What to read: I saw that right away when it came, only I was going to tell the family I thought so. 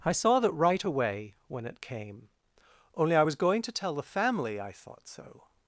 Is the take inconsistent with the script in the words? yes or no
no